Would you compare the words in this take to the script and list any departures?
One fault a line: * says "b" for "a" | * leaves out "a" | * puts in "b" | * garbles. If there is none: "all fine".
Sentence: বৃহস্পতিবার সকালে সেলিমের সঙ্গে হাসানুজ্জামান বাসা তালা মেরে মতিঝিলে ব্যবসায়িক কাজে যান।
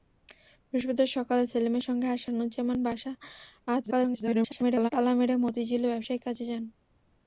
* garbles